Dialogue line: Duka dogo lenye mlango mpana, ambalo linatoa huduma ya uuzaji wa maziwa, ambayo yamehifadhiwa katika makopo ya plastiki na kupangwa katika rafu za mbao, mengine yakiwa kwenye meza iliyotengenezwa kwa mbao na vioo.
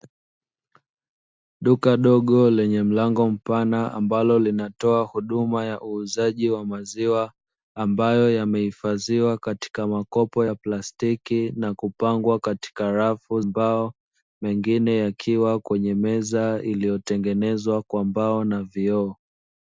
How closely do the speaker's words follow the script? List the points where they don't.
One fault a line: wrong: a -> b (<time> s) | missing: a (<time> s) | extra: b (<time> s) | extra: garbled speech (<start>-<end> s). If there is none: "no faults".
missing: za (13.4 s)